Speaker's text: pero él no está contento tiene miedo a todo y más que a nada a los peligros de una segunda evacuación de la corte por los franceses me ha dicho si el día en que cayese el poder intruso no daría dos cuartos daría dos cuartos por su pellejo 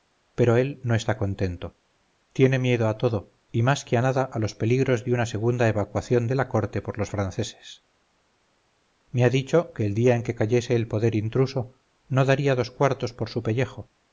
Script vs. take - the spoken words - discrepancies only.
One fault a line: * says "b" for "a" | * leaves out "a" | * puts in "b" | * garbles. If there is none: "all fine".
* says "que" for "si"
* leaves out "daría dos cuartos"